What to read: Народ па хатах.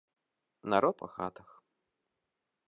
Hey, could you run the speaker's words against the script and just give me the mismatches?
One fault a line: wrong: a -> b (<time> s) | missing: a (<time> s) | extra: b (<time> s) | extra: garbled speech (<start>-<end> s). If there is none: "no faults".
no faults